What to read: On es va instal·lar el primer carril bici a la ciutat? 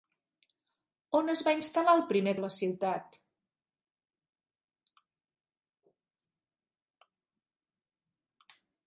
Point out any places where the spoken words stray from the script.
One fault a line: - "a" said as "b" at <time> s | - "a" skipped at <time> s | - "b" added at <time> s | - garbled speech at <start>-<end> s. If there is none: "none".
- "carril bici" skipped at 2.3 s